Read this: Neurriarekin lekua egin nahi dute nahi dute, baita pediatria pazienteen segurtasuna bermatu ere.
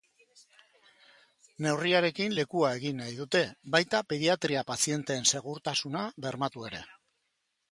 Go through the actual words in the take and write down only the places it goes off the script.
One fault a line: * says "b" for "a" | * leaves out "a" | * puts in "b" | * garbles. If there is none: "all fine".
* leaves out "nahi dute"